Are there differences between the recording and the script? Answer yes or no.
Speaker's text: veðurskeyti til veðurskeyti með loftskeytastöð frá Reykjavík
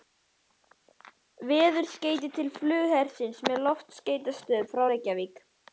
yes